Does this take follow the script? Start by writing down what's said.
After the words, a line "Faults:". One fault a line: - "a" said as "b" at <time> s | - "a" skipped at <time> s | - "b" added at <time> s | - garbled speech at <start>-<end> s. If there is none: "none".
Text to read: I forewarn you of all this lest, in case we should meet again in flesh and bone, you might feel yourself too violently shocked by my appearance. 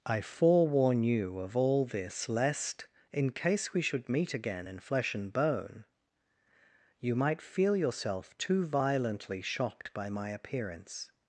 I forewarn you of all this lest, in case we should meet again in flesh and bone, you might feel yourself too violently shocked by my appearance.
Faults:
none